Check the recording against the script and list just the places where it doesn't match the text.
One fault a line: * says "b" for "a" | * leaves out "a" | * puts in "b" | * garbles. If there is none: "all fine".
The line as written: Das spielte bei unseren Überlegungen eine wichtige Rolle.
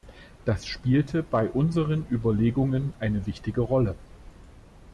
all fine